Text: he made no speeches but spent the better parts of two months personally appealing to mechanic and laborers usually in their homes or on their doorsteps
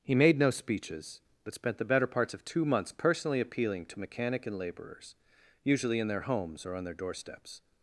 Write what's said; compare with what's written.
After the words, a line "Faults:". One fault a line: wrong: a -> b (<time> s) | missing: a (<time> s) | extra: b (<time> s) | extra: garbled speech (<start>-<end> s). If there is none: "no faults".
he made no speeches but spent the better parts of two months personally appealing to mechanic and laborers usually in their homes or on their doorsteps
Faults:
no faults